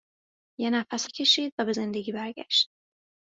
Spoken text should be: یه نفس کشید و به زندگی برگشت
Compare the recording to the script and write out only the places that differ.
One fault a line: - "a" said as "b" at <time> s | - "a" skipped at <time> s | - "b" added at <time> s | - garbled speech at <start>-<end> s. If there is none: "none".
none